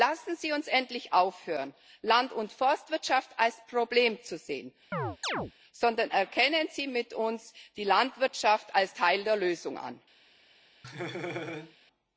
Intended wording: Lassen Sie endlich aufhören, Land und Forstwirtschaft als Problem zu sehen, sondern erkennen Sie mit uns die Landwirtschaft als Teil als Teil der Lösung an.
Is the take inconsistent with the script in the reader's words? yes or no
yes